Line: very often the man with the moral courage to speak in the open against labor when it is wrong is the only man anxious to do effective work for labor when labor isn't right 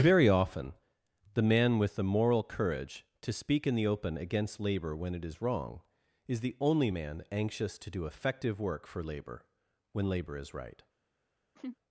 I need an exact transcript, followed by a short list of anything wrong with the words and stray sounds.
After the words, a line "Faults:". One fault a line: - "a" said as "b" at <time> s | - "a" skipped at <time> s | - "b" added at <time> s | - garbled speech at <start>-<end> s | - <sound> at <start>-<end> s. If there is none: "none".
very often the man with the moral courage to speak in the open against labor when it is wrong is the only man anxious to do effective work for labor when labor is right
Faults:
- "isn't" said as "is" at 10.4 s
- laugh at 11.5-11.8 s